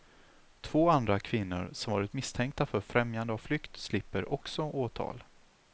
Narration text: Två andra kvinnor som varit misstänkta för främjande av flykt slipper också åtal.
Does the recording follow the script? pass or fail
pass